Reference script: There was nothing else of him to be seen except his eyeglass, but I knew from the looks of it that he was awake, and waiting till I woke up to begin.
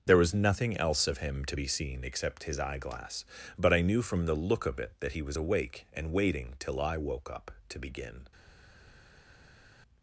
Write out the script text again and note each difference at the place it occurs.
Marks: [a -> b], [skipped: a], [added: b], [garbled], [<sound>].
There was nothing else of him to be seen except his eyeglass, but I knew from the [looks -> look] of it that he was awake, and waiting till I woke up to begin.